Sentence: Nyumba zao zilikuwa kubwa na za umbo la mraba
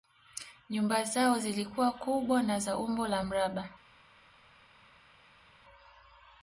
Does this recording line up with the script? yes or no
yes